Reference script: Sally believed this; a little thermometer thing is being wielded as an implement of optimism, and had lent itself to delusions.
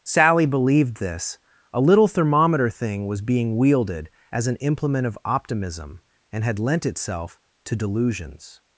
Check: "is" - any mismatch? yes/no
yes